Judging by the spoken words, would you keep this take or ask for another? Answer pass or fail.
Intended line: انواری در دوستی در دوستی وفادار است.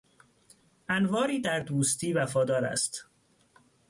fail